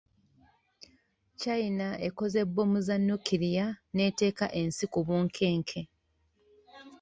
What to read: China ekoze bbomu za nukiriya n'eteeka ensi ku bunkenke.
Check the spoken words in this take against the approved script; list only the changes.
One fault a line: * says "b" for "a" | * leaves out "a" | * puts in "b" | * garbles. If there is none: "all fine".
all fine